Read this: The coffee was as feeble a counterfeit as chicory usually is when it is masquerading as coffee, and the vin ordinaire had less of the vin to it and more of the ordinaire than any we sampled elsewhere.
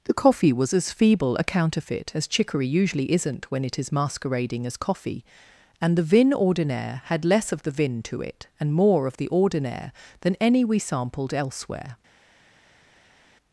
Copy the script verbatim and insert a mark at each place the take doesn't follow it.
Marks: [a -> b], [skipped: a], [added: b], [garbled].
The coffee was as feeble a counterfeit as chicory usually [is -> isn't] when it is masquerading as coffee, and the vin ordinaire had less of the vin to it and more of the ordinaire than any we sampled elsewhere.